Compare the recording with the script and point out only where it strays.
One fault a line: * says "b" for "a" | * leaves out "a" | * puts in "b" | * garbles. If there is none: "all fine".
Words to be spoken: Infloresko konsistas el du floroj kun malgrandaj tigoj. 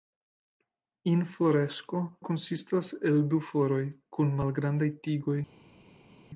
all fine